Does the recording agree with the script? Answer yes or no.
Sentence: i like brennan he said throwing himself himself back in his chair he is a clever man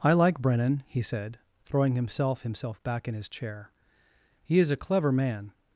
yes